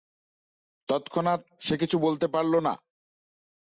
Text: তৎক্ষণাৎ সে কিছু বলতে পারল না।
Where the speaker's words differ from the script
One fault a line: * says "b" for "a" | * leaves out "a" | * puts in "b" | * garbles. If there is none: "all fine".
all fine